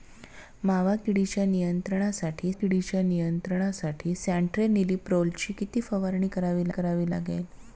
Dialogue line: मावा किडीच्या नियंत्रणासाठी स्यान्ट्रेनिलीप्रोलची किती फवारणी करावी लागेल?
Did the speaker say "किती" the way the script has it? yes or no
yes